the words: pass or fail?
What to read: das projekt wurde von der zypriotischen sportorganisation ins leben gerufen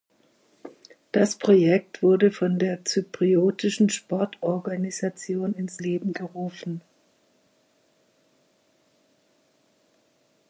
pass